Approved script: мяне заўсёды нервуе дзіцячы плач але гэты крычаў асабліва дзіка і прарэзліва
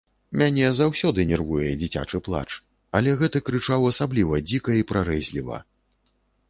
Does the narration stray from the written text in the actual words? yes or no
no